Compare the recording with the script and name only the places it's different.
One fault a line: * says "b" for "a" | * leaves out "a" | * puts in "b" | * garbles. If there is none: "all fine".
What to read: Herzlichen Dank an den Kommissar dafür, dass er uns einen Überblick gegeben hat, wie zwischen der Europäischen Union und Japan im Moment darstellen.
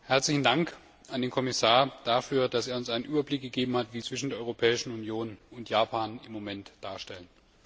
all fine